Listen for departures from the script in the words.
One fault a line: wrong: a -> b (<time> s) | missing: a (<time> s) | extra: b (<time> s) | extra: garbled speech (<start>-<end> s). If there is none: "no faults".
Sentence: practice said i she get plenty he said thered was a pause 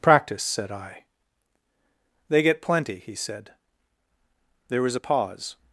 wrong: she -> they (2.3 s)
wrong: thered -> there (4.7 s)